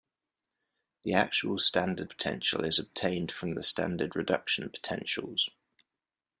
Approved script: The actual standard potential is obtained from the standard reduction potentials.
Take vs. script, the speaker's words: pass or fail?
pass